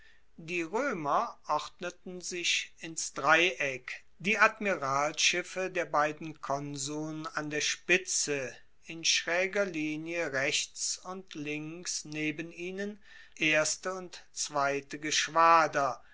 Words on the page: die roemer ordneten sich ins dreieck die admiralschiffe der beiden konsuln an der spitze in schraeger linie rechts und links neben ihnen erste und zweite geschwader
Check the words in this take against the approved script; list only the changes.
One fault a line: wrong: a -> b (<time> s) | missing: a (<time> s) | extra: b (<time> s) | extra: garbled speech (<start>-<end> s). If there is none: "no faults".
no faults